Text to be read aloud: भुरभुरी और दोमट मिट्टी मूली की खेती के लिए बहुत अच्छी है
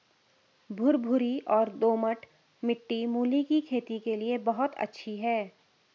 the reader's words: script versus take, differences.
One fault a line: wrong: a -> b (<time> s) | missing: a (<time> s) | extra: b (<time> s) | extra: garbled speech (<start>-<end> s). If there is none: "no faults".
no faults